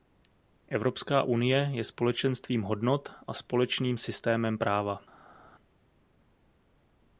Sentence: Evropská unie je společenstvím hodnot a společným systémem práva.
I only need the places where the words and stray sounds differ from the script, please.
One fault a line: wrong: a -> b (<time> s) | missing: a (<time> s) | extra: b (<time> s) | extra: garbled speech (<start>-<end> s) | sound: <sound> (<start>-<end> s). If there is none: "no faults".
no faults